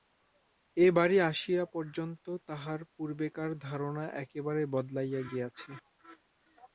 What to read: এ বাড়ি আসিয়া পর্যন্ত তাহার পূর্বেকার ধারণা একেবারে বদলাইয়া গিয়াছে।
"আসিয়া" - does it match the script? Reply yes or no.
yes